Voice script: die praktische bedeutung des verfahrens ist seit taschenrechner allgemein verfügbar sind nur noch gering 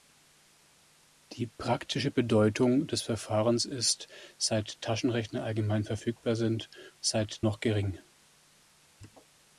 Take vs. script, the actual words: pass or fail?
fail